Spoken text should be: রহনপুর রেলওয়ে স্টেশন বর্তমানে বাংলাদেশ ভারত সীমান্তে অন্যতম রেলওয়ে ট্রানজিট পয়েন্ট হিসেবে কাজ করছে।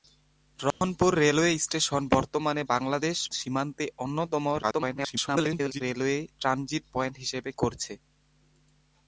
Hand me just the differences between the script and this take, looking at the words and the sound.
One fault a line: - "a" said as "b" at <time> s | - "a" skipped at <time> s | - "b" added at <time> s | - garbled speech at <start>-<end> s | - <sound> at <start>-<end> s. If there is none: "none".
- dropout at 0.7-0.8 s
- "ভারত" skipped at 3.2 s
- garbled speech at 4.6-5.8 s
- "কাজ" skipped at 7.5 s